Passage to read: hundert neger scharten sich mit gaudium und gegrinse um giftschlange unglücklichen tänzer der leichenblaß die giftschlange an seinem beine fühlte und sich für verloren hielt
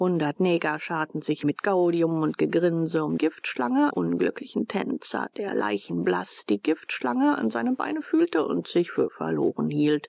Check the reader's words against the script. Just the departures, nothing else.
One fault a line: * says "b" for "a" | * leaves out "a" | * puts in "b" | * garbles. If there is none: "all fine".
all fine